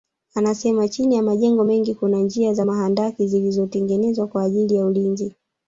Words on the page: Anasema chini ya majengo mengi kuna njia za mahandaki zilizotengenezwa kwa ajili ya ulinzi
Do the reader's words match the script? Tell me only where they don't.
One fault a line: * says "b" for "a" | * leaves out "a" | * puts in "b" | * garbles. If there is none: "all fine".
all fine